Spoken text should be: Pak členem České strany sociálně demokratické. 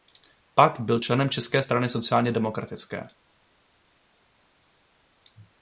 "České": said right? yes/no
yes